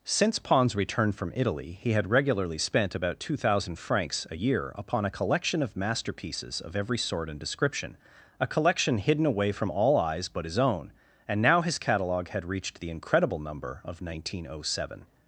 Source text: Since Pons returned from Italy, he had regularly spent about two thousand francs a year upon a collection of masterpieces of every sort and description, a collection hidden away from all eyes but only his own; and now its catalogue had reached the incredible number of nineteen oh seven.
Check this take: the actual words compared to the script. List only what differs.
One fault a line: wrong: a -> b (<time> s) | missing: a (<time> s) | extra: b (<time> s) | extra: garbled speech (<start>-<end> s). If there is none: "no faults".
missing: only (10.4 s)
wrong: its -> his (11.6 s)